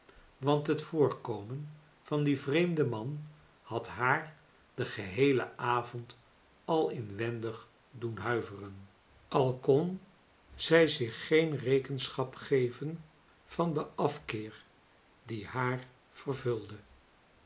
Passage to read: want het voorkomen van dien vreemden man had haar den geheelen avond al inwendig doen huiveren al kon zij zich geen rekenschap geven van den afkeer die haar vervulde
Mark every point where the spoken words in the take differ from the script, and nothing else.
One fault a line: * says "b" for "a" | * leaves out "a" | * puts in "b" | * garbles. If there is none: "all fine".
all fine